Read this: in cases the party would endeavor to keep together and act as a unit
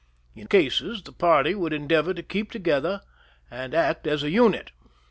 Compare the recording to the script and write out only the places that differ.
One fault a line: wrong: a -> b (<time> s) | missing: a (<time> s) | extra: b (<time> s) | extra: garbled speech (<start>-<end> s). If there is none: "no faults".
no faults